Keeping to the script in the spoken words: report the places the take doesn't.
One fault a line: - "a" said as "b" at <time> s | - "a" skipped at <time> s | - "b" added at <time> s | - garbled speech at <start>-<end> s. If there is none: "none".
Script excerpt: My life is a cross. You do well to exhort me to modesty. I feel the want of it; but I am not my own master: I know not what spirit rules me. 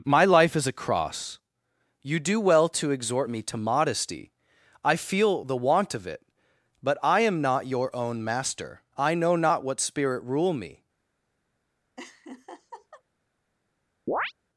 - "my" said as "your" at 7.7 s
- "rules" said as "rule" at 10.2 s